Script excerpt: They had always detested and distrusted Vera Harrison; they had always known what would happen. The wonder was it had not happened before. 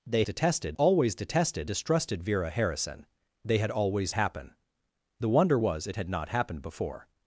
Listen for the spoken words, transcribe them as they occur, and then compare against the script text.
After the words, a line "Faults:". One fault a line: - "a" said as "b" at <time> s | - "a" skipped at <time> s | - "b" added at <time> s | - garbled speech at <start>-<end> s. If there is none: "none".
They detested always detested distrusted Vera Harrison; they had always happen. The wonder was it had not happened before.
Faults:
- "had" said as "detested" at 0.2 s
- "and" skipped at 1.7 s
- "known what would" skipped at 4.1 s